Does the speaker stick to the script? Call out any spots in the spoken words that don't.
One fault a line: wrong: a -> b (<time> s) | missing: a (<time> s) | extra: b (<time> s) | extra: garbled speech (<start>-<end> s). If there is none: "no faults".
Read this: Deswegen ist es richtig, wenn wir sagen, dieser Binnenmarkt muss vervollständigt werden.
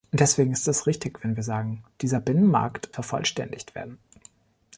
missing: muss (2.9 s)